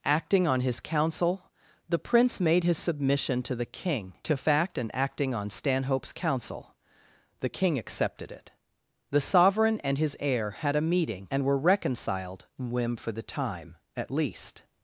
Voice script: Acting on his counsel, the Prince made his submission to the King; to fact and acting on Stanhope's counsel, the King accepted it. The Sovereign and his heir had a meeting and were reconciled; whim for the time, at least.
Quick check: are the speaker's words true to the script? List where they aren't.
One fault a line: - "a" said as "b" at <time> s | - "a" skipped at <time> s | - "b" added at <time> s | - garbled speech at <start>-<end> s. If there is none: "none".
none